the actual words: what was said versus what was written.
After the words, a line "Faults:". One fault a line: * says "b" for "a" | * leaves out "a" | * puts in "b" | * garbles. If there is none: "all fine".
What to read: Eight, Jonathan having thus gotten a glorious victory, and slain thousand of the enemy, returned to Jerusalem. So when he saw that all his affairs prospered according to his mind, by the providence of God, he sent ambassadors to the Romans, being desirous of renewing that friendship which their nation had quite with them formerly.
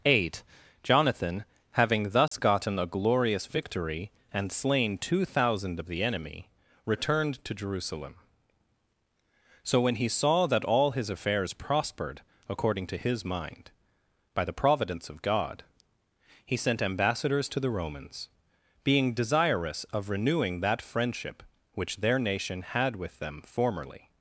Eight, Jonathan having thus gotten a glorious victory, and slain two thousand of the enemy, returned to Jerusalem. So when he saw that all his affairs prospered according to his mind, by the providence of God, he sent ambassadors to the Romans, being desirous of renewing that friendship which their nation had with them formerly.
Faults:
* puts in "two"
* leaves out "quite"